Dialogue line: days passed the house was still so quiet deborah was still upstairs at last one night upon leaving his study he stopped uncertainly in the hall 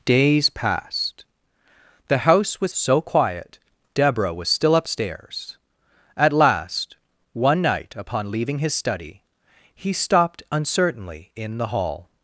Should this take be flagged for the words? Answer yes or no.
yes